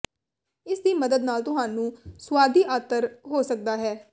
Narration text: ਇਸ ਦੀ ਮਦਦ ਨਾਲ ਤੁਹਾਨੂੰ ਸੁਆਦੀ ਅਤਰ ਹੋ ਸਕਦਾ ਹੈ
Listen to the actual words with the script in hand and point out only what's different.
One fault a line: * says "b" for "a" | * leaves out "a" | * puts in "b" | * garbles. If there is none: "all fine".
all fine